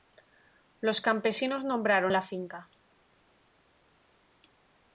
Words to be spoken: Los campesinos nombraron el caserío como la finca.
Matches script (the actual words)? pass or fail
fail